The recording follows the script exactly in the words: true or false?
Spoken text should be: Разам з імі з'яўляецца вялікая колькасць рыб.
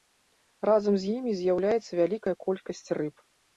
true